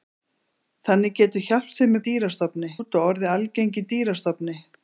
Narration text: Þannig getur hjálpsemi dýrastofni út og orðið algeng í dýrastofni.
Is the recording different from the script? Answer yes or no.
no